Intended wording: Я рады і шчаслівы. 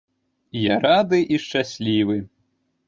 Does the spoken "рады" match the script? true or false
true